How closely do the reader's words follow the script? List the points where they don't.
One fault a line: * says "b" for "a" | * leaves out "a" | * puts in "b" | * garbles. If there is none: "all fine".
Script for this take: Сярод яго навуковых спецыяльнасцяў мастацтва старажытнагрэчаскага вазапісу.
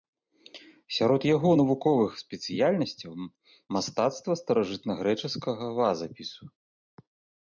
all fine